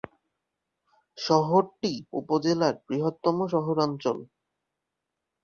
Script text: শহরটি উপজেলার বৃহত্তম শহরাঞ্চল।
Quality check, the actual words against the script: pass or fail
pass